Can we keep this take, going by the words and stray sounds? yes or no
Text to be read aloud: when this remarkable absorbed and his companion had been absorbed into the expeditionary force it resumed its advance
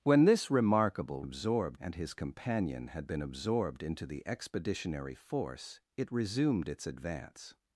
yes